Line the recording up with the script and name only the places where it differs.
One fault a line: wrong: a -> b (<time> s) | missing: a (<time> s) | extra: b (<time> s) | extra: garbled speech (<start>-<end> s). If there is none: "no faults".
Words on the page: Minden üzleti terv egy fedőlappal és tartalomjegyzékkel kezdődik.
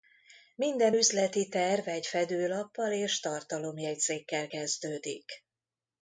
no faults